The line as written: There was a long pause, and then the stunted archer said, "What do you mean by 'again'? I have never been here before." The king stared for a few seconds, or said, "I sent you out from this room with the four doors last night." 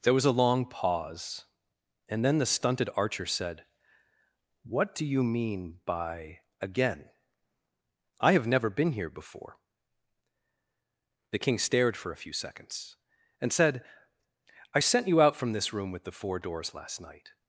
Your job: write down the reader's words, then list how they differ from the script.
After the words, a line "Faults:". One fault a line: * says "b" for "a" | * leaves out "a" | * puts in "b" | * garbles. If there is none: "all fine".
There was a long pause, and then the stunted archer said, "What do you mean by 'again'? I have never been here before." The king stared for a few seconds, and said, "I sent you out from this room with the four doors last night."
Faults:
* says "and" for "or"